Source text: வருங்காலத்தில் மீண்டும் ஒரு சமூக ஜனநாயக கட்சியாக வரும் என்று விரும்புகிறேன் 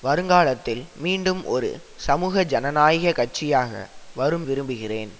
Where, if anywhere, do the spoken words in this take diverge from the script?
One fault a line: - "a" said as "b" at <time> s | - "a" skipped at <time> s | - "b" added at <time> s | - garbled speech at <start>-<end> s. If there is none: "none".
- "என்று" skipped at 4.5 s